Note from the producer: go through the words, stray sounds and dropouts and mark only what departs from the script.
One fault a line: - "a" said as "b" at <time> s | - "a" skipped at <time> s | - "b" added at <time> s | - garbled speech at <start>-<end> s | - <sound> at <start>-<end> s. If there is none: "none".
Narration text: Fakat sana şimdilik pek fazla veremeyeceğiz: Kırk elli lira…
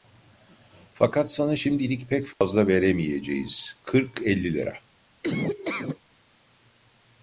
- dropout at 2.3-2.4 s
- laugh at 5.2-6.0 s